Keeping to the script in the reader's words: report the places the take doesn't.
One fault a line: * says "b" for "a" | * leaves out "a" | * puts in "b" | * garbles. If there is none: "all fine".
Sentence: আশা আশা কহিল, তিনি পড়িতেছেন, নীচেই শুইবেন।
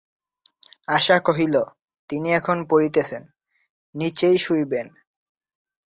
* leaves out "আশা"
* puts in "এখন"